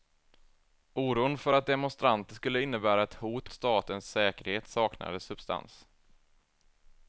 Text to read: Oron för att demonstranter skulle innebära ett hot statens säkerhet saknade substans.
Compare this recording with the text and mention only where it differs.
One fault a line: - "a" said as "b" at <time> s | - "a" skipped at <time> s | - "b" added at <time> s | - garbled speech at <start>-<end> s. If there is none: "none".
none